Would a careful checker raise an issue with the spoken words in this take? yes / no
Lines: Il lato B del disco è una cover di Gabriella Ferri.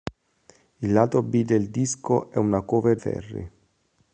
yes